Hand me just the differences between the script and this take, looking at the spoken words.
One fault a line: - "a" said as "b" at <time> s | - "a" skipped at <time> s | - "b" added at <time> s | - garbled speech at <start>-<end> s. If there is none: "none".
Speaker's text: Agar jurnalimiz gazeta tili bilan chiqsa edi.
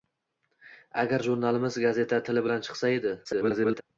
- garbled speech at 3.2-3.8 s